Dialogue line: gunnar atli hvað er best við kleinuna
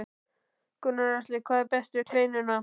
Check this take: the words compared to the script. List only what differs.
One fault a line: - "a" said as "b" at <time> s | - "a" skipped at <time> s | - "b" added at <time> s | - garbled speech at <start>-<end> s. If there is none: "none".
none